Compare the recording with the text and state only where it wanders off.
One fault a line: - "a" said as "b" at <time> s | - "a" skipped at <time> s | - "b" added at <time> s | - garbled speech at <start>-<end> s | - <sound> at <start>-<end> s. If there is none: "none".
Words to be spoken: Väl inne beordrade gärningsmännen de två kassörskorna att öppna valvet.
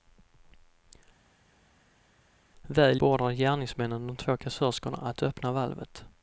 - "inne" skipped at 3.0 s